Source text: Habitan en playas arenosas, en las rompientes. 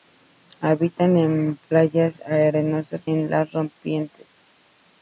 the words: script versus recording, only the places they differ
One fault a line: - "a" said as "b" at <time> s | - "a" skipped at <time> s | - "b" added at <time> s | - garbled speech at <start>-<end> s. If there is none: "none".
none